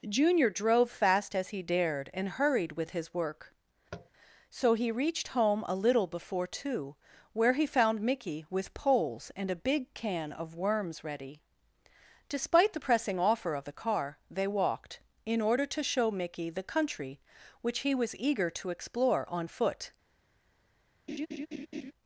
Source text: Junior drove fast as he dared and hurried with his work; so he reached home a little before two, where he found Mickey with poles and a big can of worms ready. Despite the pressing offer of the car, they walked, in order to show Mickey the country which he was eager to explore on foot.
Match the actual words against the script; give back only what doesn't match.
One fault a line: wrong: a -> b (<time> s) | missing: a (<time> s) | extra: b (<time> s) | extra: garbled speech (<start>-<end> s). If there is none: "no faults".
no faults